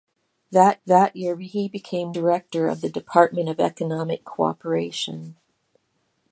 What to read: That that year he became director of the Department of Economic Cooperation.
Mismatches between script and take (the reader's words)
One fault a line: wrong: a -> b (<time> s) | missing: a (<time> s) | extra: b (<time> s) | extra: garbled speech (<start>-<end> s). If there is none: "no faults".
no faults